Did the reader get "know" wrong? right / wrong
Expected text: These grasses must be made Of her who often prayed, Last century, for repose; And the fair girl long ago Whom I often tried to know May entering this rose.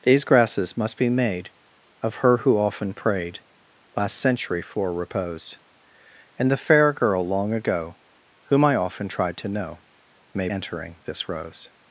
right